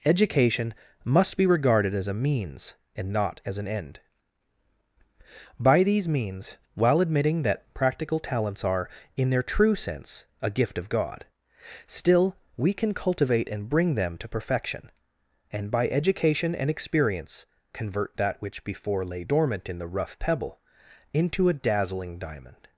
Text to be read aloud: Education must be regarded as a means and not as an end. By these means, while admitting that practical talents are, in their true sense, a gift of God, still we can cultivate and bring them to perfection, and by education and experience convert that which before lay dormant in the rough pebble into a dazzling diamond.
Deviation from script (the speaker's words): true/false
false